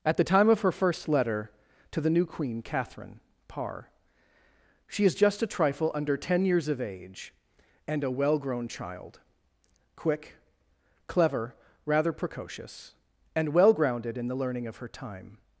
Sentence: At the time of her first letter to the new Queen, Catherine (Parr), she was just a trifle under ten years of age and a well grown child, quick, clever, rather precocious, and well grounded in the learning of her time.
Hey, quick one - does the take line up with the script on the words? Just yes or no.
no